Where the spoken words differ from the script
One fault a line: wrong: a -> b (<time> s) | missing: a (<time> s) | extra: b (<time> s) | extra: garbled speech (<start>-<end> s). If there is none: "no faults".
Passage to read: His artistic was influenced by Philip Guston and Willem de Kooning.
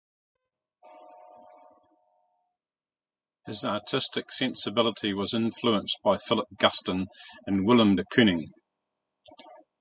extra: sensibility (4.3 s)